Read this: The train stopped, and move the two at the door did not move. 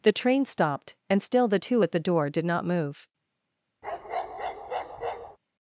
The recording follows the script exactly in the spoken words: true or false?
false